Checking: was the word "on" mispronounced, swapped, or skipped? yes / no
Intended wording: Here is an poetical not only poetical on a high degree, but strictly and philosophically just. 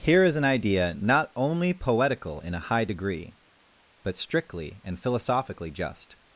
yes